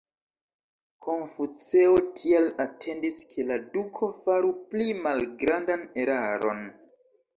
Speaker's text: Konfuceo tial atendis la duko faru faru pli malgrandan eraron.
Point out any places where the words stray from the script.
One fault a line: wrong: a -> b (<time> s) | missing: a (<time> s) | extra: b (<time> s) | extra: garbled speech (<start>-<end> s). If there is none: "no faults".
extra: ke (3.4 s)
missing: faru (4.5 s)